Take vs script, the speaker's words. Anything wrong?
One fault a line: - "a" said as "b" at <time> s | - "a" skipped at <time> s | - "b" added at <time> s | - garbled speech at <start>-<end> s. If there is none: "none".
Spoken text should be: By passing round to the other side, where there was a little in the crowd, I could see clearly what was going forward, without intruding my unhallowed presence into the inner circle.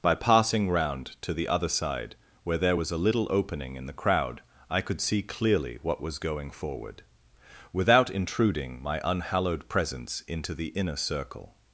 - "opening" added at 3.3 s